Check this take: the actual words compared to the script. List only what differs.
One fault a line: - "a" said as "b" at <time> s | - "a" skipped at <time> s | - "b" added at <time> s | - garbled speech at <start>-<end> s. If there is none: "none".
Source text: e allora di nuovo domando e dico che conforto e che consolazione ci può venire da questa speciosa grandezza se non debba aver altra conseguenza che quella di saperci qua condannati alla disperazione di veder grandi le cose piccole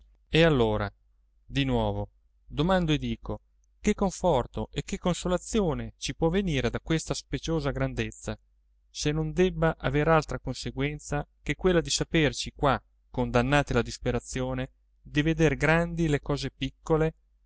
none